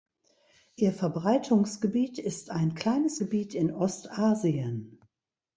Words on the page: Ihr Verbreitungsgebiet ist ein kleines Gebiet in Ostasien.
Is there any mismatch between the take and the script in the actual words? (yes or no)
no